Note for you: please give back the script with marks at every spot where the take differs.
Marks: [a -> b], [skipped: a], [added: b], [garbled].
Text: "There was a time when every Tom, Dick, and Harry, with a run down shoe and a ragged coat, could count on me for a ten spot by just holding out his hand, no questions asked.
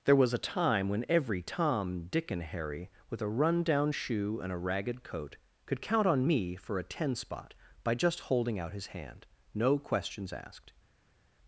"There was a time when every Tom, Dick, and Harry, with a run down shoe and a ragged coat, could count on me for a ten spot by just holding out his hand, no questions asked.